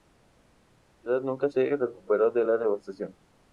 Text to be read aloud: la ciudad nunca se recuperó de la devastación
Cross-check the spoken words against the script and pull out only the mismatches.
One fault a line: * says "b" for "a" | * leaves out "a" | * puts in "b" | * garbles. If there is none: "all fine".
all fine